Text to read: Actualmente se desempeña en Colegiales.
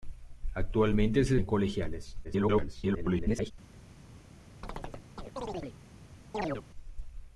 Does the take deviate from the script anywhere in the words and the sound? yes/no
yes